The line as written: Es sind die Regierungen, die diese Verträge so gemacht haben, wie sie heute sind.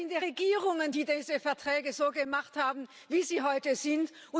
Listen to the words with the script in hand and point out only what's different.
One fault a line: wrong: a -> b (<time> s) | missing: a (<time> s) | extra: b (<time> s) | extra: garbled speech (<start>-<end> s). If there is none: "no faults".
no faults